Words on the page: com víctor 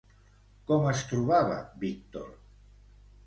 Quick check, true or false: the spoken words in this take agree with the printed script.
false